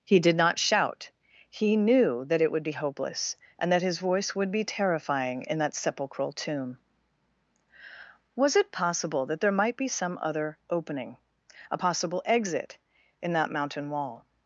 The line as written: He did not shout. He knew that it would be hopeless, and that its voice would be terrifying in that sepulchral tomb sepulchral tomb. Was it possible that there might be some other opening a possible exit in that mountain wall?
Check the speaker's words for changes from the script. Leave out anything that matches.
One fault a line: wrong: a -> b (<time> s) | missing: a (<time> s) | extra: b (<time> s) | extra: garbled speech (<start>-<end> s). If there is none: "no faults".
wrong: its -> his (3.8 s)
missing: sepulchral tomb (6.8 s)